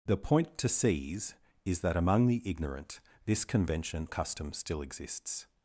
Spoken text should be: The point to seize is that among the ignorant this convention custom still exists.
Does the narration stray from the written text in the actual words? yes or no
no